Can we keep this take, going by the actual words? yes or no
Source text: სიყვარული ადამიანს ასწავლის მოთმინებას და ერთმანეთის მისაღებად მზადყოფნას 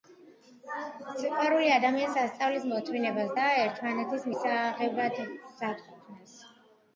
yes